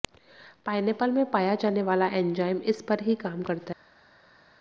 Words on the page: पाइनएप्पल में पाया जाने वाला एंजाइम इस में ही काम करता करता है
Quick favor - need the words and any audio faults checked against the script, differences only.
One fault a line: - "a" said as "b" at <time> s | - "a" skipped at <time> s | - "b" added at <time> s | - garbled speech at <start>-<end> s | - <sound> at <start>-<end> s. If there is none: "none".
- "में" said as "पर" at 2.8 s
- "करता" skipped at 3.6 s